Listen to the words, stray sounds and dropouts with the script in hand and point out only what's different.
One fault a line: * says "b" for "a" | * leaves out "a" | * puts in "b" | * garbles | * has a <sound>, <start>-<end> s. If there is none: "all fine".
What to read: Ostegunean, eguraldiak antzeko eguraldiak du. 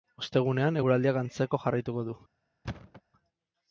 * says "jarraituko" for "eguraldiak"
* has a thud, 2.6-3.0 s